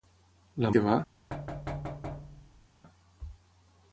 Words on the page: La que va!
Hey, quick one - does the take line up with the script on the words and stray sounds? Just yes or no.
no